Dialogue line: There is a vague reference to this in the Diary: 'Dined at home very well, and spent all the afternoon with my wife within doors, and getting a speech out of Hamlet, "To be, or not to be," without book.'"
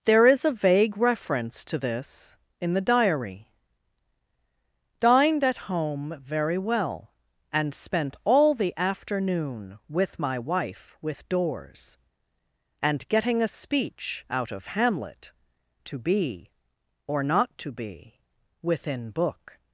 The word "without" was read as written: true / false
false